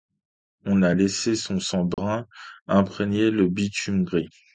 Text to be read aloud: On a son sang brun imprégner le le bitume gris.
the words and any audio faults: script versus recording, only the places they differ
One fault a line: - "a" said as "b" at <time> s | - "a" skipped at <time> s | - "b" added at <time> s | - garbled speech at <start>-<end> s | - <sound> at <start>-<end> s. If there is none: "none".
- "laissé" added at 0.9 s
- dropout at 1.9-2.0 s
- "le" skipped at 3.5 s